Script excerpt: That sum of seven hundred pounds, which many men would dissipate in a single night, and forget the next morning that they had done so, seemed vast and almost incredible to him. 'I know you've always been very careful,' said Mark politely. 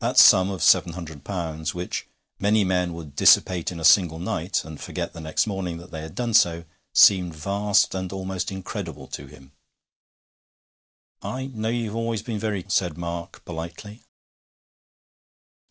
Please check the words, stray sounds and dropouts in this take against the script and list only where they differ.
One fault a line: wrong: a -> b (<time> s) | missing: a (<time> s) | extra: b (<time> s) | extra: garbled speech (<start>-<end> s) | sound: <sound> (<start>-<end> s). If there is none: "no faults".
missing: careful (12.6 s)